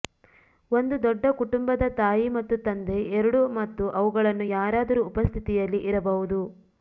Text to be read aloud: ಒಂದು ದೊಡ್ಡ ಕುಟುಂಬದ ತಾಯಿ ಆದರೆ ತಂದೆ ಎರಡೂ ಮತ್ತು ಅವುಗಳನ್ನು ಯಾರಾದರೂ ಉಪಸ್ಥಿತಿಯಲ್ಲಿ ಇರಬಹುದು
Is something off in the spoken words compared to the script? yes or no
yes